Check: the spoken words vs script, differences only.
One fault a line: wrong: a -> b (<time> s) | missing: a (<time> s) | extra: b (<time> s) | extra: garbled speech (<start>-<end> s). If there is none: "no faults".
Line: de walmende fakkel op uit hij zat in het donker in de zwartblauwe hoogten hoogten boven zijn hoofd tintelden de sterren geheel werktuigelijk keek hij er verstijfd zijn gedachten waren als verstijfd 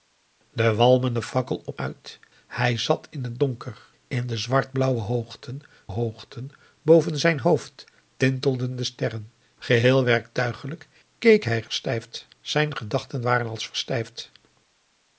no faults